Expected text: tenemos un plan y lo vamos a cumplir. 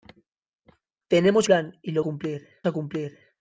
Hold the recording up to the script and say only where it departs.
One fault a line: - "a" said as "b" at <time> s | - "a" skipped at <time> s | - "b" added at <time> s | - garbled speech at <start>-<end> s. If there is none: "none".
- "un" skipped at 1.5 s
- "vamos" said as "cumplir" at 2.0 s